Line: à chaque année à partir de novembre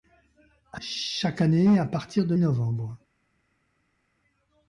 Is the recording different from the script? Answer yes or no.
no